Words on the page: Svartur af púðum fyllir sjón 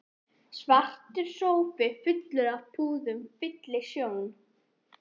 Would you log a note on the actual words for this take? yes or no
yes